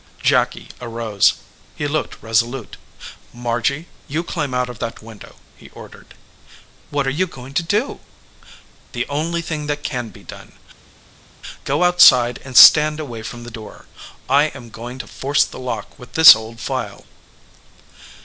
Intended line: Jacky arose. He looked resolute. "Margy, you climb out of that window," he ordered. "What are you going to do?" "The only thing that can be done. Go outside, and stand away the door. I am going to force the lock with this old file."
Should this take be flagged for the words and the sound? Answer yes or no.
yes